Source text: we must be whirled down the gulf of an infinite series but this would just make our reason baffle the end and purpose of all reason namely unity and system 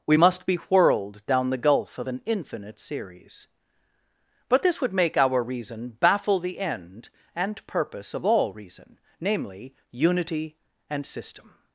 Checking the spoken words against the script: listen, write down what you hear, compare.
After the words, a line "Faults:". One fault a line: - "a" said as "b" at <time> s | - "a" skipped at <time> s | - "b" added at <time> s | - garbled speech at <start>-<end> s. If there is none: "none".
we must be whirled down the gulf of an infinite series but this would make our reason baffle the end and purpose of all reason namely unity and system
Faults:
- "just" skipped at 4.9 s